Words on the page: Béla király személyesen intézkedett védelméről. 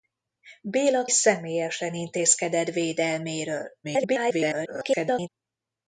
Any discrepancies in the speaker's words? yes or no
yes